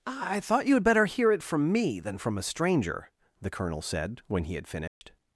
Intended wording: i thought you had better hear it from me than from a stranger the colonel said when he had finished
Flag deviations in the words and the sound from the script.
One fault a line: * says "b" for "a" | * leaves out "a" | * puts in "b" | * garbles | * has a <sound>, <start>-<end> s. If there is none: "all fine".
* has a dropout, 4.9-5.0 s